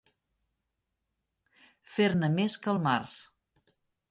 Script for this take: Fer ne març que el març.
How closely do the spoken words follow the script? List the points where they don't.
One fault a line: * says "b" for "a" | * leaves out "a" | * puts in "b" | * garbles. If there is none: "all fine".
* says "més" for "març"